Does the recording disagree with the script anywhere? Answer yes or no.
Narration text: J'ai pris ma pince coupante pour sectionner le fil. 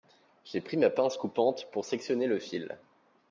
no